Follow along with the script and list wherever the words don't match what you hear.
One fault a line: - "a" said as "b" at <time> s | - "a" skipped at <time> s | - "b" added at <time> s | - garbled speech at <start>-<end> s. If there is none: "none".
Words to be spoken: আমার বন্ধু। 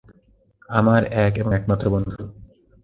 - "এক এবং একমাত্র" added at 1.2 s